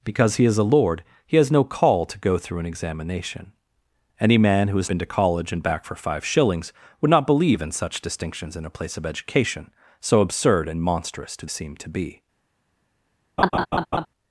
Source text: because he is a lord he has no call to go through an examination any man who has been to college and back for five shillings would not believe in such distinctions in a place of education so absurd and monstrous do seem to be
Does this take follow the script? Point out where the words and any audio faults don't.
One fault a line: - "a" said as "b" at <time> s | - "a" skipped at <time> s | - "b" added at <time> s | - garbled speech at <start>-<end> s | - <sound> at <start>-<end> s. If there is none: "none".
- laugh at 13.4-14.1 s